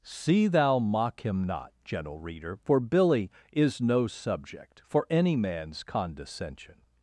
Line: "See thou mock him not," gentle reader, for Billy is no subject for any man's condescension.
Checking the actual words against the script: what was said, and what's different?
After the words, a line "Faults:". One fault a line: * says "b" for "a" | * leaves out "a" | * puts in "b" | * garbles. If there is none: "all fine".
"See thou mock him not," gentle reader, for Billy is no subject for any man's condescension.
Faults:
all fine